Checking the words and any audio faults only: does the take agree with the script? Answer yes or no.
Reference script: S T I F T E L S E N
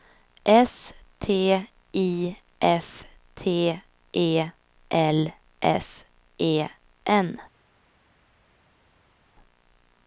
yes